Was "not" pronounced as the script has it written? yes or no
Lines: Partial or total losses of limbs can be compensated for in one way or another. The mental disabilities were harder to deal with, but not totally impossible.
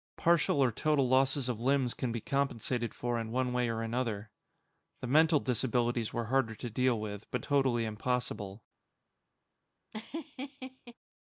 no